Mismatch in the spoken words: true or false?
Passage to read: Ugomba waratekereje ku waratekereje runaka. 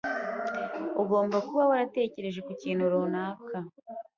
true